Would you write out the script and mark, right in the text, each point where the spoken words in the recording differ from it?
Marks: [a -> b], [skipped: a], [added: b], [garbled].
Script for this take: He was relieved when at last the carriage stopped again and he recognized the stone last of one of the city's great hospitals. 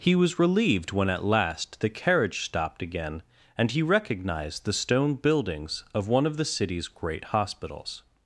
He was relieved when at last the carriage stopped again and he recognized the stone [last -> buildings] of one of the city's great hospitals.